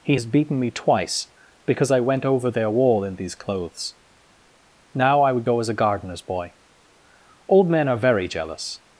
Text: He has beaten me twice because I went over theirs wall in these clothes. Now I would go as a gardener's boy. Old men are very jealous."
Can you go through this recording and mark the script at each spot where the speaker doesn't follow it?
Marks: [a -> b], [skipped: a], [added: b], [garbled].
He has beaten me twice because I went over [theirs -> their] wall in these clothes. Now I would go as a gardener's boy. Old men are very jealous."